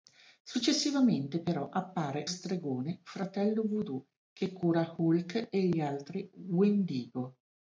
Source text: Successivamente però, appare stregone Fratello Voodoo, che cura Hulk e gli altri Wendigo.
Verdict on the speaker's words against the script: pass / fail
pass